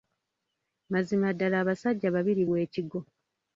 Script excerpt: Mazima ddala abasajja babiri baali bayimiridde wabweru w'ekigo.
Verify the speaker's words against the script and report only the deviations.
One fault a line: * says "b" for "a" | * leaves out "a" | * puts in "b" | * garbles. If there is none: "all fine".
* leaves out "baali bayimiridde wabweru"